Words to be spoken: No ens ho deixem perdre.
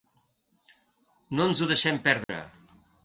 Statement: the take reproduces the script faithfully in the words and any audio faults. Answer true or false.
false